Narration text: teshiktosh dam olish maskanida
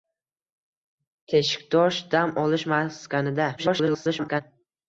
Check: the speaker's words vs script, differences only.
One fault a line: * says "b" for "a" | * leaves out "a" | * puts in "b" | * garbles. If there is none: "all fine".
* garbles